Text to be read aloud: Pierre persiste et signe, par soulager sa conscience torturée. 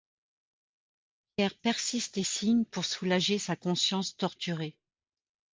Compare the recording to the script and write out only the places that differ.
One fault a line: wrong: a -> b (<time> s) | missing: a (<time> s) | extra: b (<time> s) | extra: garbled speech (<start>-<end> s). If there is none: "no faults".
wrong: par -> pour (2.6 s)